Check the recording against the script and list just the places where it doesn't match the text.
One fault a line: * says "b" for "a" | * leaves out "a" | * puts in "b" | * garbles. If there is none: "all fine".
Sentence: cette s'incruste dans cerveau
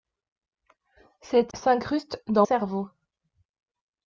all fine